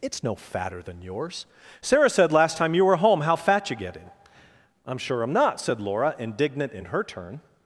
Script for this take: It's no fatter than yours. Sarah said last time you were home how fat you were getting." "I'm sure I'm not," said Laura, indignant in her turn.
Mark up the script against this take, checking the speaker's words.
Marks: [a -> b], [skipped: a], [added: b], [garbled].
It's no fatter than yours. Sarah said last time you were home how fat you [skipped: were] getting." "I'm sure I'm not," said Laura, indignant in her turn.